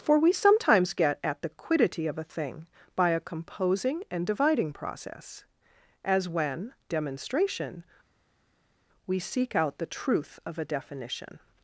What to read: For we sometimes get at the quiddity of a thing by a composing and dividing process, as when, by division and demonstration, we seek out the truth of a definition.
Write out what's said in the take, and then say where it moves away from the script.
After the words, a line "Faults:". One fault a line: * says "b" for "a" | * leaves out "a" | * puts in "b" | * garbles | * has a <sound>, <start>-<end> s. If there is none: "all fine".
For we sometimes get at the quiddity of a thing by a composing and dividing process, as when, demonstration, we seek out the truth of a definition.
Faults:
* leaves out "by division and"